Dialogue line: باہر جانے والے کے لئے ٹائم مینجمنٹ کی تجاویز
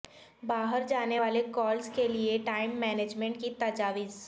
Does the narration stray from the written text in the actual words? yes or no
yes